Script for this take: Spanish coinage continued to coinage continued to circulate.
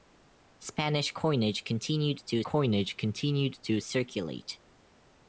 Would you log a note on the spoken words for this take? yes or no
no